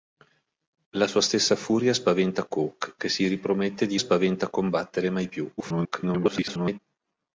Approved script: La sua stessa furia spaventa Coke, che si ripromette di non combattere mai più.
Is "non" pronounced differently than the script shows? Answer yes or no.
yes